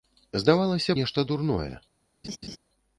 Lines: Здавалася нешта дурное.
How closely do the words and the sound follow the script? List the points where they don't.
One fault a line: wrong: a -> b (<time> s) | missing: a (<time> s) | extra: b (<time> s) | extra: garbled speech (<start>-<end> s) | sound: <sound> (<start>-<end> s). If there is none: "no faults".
sound: laugh (2.2-2.6 s)